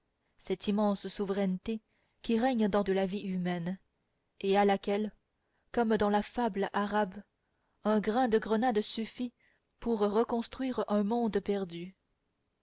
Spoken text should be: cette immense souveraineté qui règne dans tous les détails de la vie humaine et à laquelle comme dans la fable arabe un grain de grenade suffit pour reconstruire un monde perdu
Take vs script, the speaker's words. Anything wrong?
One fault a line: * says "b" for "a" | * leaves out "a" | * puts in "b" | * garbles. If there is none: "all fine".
* leaves out "tous les détails"